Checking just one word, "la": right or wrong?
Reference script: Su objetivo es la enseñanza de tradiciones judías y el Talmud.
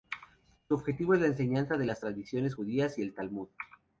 right